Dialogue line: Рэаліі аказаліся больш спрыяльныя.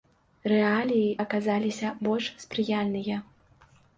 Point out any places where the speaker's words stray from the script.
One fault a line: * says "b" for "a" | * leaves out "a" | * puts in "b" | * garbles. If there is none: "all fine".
all fine